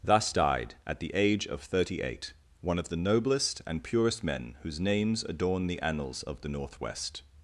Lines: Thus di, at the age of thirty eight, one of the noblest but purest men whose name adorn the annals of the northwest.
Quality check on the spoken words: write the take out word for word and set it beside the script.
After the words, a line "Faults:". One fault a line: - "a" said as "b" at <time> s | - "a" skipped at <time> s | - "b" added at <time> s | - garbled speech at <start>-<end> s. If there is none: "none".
Thus died, at the age of thirty eight, one of the noblest and purest men whose names adorn the annals of the northwest.
Faults:
- "di" said as "died" at 0.3 s
- "but" said as "and" at 3.7 s
- "name" said as "names" at 4.8 s